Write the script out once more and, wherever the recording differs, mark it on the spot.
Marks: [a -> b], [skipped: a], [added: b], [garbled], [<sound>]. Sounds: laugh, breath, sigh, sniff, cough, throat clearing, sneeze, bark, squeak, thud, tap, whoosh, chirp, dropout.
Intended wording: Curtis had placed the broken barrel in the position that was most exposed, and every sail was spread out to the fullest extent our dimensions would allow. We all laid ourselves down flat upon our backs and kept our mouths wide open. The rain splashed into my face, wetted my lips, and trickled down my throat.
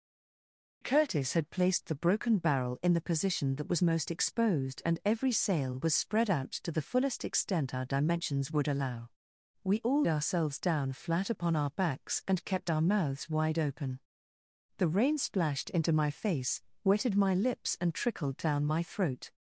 Curtis had placed the broken barrel in the position that was most exposed, and every sail was spread out to the fullest extent our dimensions would allow. We all [skipped: laid] ourselves down flat upon our backs and kept our mouths wide open. The rain splashed into my face, wetted my lips, and trickled down my throat.